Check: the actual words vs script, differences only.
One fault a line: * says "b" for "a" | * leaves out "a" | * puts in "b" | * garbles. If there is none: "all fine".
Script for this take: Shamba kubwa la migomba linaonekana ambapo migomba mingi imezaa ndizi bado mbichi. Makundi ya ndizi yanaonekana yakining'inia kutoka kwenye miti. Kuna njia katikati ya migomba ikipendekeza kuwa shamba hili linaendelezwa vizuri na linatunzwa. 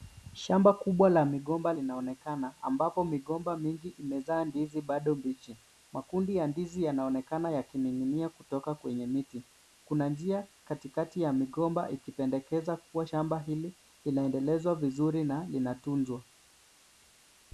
all fine